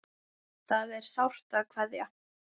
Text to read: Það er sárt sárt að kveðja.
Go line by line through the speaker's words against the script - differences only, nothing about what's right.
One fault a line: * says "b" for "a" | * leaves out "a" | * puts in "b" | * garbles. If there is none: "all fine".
* leaves out "sárt"